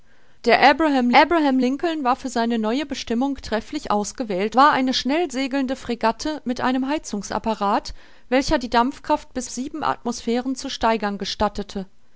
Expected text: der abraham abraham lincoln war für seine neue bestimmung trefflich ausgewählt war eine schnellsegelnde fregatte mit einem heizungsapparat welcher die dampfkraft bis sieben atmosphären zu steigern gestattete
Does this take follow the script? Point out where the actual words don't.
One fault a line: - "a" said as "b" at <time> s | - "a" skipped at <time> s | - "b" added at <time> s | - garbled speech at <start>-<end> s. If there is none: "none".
none